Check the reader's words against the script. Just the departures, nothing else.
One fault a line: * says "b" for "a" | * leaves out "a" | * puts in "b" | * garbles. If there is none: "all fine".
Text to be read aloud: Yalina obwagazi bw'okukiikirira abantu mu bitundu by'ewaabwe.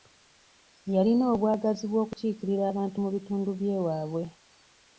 all fine